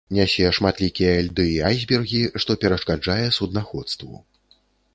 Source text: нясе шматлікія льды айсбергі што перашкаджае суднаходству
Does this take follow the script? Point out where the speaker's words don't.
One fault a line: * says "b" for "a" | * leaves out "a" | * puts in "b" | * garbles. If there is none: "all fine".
* puts in "і"